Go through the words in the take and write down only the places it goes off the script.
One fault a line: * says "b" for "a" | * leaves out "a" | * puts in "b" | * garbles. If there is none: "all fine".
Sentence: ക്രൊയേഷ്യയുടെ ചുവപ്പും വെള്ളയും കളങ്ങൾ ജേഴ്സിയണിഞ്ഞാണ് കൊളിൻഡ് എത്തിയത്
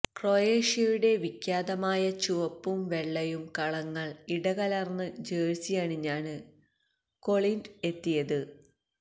* puts in "വിഖ്യാതമായ"
* puts in "ഇടകലർന്ന്"